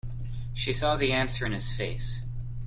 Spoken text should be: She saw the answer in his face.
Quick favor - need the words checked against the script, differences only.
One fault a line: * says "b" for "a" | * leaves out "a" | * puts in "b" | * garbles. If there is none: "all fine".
all fine